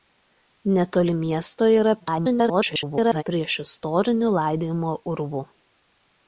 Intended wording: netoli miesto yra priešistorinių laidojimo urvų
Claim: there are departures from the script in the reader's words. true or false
true